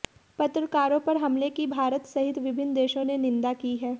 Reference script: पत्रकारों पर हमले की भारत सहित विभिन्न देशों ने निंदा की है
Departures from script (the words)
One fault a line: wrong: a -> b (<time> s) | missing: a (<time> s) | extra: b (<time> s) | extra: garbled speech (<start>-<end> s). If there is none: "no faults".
no faults